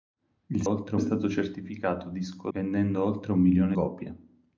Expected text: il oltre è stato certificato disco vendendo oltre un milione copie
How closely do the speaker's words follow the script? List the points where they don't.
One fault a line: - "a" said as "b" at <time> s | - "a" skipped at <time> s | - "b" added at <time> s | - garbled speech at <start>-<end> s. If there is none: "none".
none